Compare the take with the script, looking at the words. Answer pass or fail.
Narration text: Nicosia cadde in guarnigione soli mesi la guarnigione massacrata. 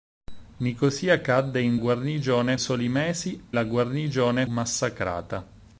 pass